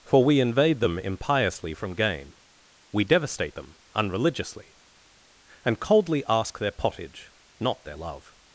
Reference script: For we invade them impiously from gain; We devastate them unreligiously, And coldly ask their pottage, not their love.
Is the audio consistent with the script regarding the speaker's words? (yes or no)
yes